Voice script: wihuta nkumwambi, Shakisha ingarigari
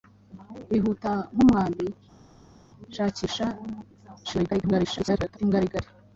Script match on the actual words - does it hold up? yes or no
no